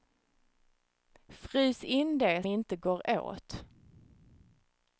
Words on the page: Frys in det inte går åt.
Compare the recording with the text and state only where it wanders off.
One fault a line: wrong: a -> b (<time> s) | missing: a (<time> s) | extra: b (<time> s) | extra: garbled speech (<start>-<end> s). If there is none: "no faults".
no faults